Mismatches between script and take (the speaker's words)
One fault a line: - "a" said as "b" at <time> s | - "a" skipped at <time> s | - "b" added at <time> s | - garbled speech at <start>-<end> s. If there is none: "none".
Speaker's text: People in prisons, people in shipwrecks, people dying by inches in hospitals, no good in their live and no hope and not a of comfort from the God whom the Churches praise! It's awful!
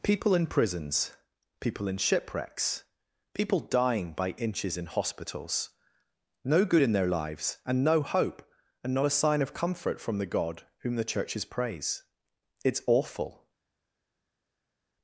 - "live" said as "lives" at 7.1 s
- "sign" added at 9.1 s